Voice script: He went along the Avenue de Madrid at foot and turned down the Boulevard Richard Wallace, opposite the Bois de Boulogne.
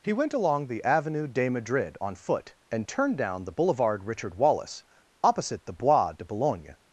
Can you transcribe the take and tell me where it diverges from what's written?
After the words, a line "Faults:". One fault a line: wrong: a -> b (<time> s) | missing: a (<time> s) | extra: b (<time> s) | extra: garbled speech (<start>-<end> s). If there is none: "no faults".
He went along the Avenue de Madrid on foot and turned down the Boulevard Richard Wallace, opposite the Bois de Boulogne.
Faults:
wrong: at -> on (2.0 s)